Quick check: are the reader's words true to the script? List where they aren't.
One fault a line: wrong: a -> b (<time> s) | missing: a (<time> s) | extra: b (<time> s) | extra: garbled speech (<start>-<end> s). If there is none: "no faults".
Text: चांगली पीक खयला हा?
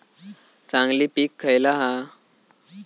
no faults